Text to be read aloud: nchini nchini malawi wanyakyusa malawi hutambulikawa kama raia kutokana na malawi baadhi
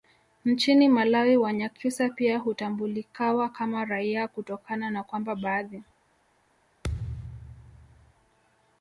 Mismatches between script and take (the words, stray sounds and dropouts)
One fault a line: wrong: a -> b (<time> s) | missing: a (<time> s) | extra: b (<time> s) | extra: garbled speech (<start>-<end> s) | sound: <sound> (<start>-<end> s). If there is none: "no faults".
missing: nchini (0.9 s)
wrong: malawi -> pia (2.1 s)
wrong: malawi -> kwamba (5.0 s)
sound: thud (6.8-8.1 s)